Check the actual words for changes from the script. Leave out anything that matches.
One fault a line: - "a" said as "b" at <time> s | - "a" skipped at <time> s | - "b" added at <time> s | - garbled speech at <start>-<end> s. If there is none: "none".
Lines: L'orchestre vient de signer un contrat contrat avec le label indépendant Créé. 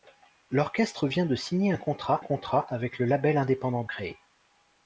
none